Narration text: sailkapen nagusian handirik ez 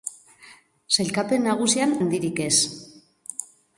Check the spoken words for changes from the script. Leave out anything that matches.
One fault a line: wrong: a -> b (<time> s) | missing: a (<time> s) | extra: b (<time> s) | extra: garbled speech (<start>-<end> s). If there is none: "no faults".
no faults